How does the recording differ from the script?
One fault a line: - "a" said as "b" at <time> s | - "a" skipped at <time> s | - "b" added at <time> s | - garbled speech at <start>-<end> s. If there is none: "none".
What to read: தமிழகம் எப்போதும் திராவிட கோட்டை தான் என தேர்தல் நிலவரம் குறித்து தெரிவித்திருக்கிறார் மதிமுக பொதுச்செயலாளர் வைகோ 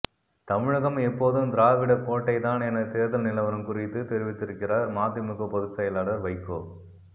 none